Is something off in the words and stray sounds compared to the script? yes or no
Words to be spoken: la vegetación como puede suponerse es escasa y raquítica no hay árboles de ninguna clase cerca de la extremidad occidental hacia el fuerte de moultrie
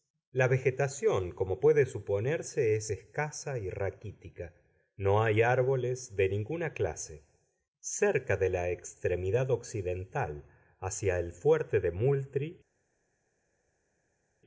no